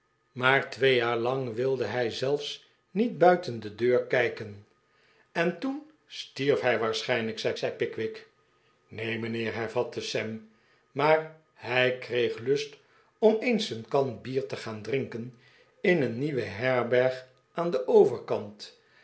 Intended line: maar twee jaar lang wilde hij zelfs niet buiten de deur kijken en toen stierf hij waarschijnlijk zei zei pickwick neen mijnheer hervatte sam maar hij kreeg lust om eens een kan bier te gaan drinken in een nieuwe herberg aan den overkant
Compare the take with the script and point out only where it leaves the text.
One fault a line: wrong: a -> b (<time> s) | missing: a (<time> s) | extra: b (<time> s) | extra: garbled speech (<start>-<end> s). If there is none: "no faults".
no faults